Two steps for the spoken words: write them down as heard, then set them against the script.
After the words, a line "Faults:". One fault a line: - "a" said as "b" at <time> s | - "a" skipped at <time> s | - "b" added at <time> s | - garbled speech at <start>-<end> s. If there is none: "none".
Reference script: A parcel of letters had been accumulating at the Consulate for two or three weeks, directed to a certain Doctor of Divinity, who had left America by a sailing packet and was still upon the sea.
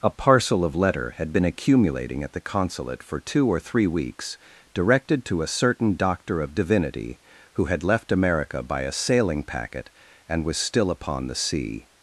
A parcel of letter had been accumulating at the Consulate for two or three weeks, directed to a certain Doctor of Divinity, who had left America by a sailing packet and was still upon the sea.
Faults:
- "letters" said as "letter" at 0.7 s